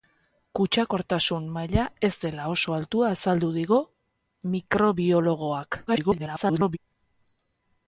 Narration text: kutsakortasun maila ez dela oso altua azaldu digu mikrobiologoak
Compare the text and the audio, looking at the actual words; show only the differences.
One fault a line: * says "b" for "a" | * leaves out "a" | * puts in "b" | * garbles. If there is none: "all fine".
* garbles